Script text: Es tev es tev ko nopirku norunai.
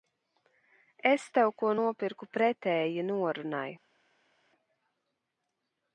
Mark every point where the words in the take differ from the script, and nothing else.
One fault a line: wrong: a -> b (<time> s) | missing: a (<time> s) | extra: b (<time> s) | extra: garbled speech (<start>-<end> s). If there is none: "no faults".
missing: es tev (1.5 s)
extra: pretēji (2.4 s)